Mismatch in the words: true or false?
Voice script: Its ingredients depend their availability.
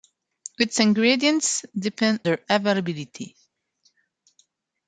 false